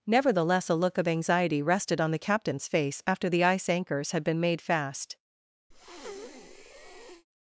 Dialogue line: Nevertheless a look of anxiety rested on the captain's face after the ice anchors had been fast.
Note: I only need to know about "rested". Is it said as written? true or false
true